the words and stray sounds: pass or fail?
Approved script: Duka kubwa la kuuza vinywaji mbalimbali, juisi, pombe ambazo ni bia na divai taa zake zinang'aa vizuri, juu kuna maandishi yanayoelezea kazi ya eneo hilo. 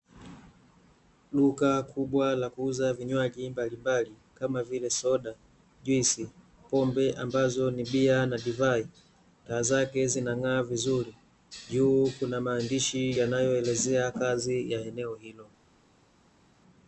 fail